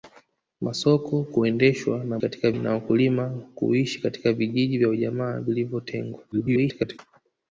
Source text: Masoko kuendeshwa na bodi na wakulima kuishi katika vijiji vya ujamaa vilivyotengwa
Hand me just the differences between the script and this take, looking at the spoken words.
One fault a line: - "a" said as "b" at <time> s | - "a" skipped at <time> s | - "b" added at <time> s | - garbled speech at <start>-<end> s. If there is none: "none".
- "bodi" said as "katika" at 2.2 s
- garbled speech at 6.3-7.0 s